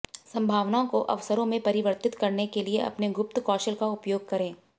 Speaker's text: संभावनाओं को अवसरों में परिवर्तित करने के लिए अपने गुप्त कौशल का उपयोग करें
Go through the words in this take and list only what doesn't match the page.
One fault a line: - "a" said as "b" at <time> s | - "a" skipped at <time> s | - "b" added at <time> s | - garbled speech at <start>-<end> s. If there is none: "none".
none